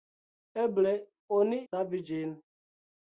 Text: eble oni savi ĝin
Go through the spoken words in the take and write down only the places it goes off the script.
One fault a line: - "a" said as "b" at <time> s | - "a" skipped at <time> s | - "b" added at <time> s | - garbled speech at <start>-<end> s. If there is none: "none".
none